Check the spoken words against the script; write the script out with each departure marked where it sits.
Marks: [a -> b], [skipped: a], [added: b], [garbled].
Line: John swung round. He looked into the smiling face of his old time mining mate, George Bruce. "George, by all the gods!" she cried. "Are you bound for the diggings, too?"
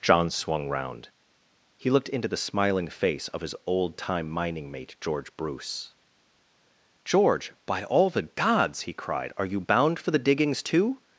John swung round. He looked into the smiling face of his old time mining mate, George Bruce. "George, by all the gods!" [she -> he] cried. "Are you bound for the diggings, too?"